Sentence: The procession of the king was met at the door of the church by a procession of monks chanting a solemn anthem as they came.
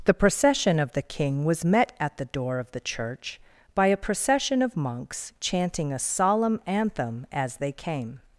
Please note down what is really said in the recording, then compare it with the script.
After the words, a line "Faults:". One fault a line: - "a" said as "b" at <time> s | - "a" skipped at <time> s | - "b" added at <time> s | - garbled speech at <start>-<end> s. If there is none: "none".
The procession of the king was met at the door of the church by a procession of monks chanting a solemn anthem as they came.
Faults:
none